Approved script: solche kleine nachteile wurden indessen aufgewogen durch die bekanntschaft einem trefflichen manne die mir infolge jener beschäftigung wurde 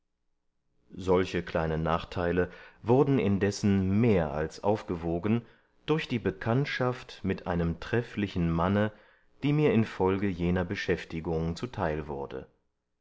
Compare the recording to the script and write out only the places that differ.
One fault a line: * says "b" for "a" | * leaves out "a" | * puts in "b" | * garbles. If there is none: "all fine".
* puts in "mehr als"
* puts in "mit"
* puts in "zuteil"